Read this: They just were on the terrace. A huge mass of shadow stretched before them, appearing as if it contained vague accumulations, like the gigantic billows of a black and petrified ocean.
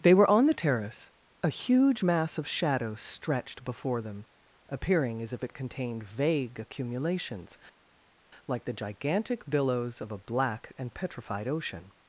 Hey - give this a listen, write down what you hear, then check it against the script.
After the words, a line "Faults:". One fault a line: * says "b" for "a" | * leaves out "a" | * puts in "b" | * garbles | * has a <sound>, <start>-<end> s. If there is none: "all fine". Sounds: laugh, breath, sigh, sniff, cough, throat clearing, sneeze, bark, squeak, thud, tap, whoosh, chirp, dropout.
They were on the terrace. A huge mass of shadow stretched before them, appearing as if it contained vague accumulations, like the gigantic billows of a black and petrified ocean.
Faults:
* leaves out "just"